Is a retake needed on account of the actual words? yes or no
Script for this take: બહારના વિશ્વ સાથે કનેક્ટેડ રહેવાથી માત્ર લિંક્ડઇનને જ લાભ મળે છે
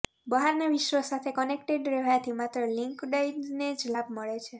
no